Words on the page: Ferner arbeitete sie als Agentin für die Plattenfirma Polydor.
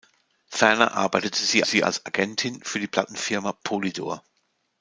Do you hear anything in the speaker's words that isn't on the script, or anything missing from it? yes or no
yes